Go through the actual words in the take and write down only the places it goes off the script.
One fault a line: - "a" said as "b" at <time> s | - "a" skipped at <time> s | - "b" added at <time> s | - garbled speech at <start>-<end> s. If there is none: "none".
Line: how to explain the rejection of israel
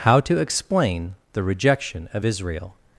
none